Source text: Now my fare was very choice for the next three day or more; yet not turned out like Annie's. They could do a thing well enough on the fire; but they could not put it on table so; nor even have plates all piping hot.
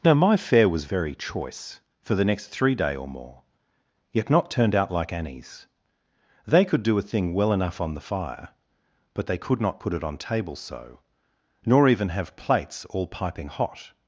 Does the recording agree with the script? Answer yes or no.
yes